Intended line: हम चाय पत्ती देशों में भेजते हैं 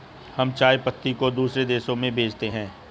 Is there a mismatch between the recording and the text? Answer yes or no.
yes